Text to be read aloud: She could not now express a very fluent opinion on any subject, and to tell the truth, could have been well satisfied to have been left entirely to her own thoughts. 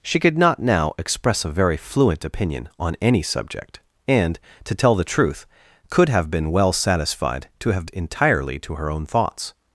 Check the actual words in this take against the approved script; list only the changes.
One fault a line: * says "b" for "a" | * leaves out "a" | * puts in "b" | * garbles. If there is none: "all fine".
* leaves out "been left"